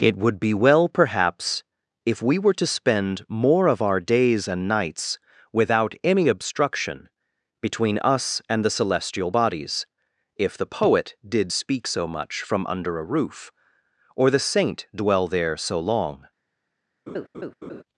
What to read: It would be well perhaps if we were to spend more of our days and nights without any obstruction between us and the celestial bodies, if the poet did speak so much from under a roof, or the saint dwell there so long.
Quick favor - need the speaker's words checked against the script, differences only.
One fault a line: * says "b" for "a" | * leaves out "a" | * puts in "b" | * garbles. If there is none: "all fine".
all fine